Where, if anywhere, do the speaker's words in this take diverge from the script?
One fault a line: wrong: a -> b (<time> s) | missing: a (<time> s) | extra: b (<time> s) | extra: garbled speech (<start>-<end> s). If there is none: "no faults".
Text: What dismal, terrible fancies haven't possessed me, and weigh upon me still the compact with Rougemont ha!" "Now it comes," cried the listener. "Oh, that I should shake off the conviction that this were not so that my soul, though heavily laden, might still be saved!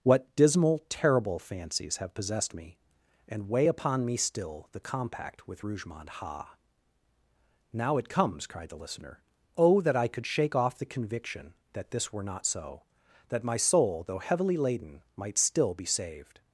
wrong: haven't -> have (2.0 s)
wrong: should -> could (10.1 s)